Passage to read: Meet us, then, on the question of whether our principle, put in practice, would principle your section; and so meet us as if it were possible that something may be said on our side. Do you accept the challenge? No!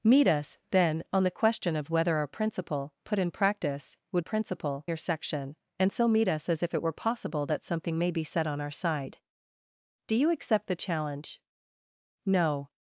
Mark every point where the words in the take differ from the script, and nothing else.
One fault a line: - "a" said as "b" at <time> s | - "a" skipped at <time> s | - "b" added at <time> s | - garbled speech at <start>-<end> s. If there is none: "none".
none